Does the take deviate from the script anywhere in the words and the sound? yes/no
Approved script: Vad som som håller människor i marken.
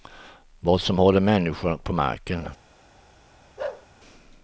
yes